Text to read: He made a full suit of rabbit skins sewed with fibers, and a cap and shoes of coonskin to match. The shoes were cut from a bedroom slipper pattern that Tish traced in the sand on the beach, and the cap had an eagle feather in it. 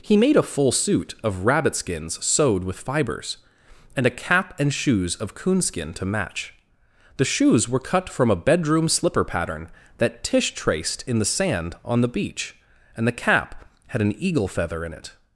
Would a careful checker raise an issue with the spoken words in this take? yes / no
no